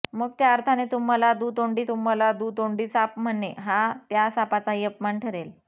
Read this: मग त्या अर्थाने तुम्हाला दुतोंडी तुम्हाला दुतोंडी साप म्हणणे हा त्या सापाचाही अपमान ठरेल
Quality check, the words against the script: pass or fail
pass